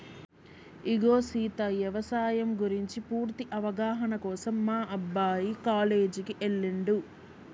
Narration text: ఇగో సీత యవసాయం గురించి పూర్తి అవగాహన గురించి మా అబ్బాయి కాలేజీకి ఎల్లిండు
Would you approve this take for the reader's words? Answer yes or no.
no